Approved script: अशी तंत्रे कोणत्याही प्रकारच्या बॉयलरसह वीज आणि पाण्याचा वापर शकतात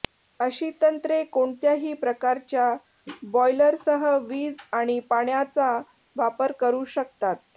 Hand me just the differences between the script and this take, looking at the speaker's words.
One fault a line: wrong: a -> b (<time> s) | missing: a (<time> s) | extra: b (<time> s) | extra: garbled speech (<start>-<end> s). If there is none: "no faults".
extra: करू (6.6 s)